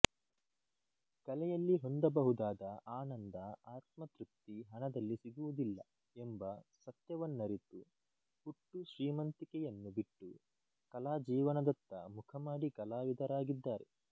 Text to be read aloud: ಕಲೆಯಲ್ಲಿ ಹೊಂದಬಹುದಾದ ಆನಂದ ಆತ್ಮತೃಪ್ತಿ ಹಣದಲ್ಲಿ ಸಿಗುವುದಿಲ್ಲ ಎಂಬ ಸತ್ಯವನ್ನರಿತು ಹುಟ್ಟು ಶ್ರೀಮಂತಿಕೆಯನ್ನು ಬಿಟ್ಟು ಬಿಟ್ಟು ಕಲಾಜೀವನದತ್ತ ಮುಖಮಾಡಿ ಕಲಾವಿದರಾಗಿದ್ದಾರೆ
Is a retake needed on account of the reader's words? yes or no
yes